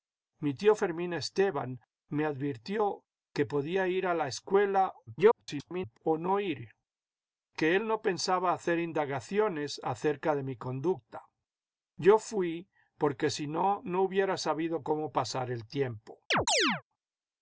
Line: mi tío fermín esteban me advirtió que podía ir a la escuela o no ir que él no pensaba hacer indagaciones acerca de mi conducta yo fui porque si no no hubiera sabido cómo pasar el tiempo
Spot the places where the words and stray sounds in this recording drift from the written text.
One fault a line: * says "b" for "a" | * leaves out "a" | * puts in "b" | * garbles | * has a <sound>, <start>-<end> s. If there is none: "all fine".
* garbles
* has a chirp, 16.3-16.8 s